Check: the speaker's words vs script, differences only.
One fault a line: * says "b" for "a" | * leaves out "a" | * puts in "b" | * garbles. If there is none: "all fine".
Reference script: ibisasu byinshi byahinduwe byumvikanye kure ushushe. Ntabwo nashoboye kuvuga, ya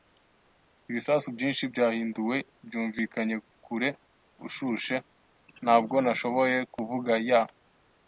all fine